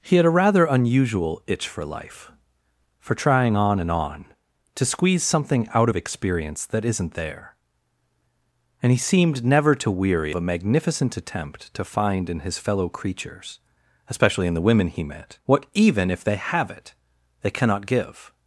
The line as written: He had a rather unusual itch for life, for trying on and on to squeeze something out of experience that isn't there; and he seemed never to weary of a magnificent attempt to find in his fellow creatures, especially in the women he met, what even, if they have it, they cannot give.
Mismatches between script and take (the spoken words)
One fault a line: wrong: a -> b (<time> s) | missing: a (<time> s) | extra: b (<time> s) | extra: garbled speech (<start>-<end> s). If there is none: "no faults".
missing: of (10.3 s)